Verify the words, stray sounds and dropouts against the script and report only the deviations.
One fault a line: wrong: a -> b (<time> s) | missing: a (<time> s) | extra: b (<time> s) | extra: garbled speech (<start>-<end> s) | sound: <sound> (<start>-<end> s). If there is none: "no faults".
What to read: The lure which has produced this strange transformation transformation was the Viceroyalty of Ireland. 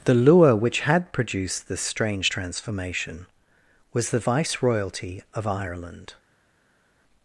wrong: has -> had (0.8 s)
missing: transformation (3.3 s)